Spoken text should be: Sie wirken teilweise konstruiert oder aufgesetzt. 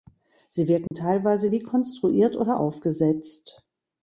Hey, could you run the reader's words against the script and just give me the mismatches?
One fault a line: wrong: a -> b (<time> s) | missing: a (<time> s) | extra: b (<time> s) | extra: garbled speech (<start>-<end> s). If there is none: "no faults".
extra: wie (1.5 s)